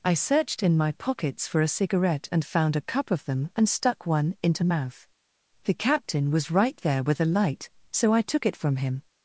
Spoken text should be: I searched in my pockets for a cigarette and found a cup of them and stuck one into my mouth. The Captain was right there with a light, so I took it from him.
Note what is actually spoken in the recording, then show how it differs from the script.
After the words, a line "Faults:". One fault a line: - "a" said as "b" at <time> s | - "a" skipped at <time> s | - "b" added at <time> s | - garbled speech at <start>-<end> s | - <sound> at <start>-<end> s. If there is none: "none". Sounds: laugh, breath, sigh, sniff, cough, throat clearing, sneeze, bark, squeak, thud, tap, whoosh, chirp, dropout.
I searched in my pockets for a cigarette and found a cup of them and stuck one into mouth. The Captain was right there with a light, so I took it from him.
Faults:
- "my" skipped at 4.7 s